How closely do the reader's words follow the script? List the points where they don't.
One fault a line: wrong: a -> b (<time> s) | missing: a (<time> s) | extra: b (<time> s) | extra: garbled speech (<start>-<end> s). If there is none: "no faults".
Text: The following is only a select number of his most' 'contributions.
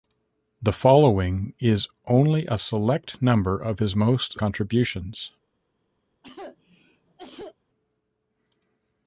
no faults